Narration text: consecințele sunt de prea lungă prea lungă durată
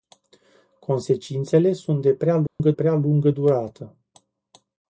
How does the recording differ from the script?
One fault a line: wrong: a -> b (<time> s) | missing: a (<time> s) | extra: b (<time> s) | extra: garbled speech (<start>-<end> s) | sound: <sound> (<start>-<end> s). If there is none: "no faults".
sound: dropout (2.5-2.6 s)